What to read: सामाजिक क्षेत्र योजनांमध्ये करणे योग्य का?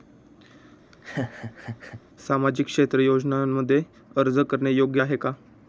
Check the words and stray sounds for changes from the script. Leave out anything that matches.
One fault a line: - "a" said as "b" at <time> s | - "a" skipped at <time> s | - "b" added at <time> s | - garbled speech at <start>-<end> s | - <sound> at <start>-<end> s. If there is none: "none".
- laugh at 0.9-2.0 s
- "अर्ज" added at 4.2 s
- "आहे" added at 5.0 s